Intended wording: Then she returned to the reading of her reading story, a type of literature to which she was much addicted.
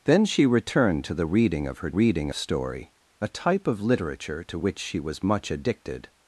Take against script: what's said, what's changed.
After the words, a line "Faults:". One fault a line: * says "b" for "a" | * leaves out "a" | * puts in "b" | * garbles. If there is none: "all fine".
Then she returned to the reading of her reading story, a type of literature to which she was much addicted.
Faults:
all fine